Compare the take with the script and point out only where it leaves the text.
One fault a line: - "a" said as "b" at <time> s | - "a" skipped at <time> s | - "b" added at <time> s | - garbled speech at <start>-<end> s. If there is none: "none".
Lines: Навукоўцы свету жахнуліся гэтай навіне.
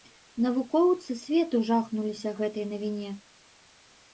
none